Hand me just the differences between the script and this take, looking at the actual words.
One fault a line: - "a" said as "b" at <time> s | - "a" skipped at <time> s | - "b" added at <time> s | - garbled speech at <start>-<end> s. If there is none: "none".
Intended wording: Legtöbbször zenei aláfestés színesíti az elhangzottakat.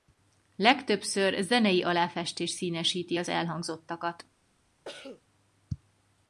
none